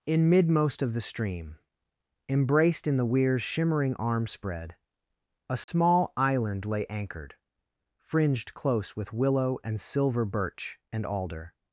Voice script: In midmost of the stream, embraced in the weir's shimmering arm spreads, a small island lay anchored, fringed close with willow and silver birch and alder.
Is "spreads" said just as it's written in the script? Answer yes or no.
no